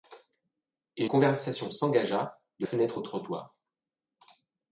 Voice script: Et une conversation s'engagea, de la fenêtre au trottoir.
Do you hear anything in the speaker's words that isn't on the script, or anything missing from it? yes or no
yes